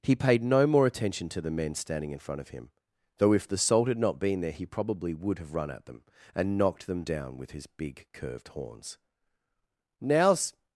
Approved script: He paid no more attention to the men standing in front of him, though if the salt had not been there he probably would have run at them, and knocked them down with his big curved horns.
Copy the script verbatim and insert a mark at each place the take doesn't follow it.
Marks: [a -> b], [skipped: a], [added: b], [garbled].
He paid no more attention to the men standing in front of him, though if the salt had not been there he probably would have run at them, and knocked them down with his big curved horns. [added: Now's]